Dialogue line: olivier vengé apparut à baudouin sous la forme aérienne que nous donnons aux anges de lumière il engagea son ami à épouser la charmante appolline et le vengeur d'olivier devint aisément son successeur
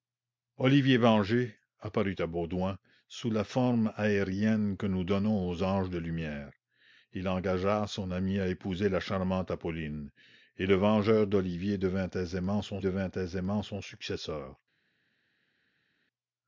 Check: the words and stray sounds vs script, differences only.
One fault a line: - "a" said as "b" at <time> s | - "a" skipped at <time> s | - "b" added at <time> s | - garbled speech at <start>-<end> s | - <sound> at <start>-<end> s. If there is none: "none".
- "devint aisément son" added at 12.8 s